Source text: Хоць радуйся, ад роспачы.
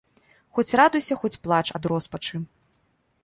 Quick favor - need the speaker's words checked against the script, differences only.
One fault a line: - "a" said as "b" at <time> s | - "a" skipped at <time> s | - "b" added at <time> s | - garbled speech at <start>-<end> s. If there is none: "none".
- "хоць плач" added at 1.2 s